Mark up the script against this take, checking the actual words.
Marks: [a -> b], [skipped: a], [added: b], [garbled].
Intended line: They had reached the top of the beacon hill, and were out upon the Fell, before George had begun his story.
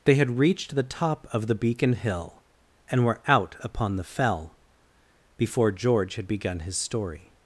They had reached the top of the beacon hill, and were out upon the Fell, before George had begun his story.